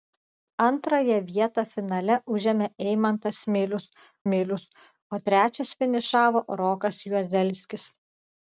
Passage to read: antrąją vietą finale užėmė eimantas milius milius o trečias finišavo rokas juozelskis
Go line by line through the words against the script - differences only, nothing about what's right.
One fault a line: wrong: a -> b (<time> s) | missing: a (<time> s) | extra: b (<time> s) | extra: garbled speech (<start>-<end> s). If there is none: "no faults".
no faults